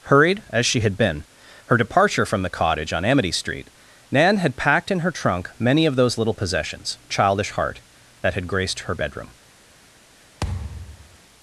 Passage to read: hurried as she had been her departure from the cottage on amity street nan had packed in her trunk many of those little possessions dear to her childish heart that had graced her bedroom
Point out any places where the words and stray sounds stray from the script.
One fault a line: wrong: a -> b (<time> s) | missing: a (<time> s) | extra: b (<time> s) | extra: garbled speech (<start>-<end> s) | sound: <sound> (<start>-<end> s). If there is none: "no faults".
missing: dear to her (7.0 s)
sound: thud (10.4-11.2 s)